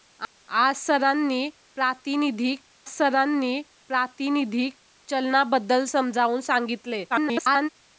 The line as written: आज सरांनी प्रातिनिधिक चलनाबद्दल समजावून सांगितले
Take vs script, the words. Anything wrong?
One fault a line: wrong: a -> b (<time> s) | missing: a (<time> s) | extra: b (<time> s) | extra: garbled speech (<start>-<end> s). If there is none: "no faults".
extra: सरांनी प्रातिनिधिक (2.9 s)
extra: garbled speech (7.1-7.7 s)